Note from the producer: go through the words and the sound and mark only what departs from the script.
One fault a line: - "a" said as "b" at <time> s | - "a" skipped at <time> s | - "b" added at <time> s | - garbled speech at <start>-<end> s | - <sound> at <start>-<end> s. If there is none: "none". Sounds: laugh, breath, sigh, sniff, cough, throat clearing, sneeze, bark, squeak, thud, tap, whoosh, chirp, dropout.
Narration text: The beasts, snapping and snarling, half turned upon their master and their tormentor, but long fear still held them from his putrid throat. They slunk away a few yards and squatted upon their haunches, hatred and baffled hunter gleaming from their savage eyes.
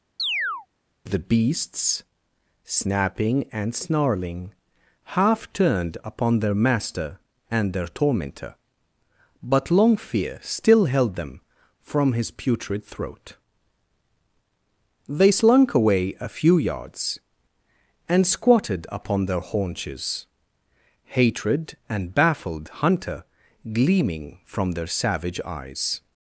- chirp at 0.2-0.7 s